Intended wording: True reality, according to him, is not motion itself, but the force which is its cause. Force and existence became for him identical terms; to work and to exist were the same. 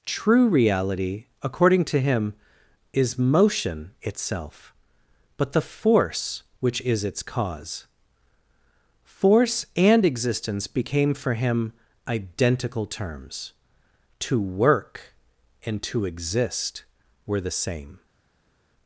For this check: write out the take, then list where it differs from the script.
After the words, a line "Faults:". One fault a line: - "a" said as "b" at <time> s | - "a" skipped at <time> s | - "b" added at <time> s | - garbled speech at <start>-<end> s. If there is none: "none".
True reality, according to him, is motion itself, but the force which is its cause. Force and existence became for him identical terms; to work and to exist were the same.
Faults:
- "not" skipped at 3.2 s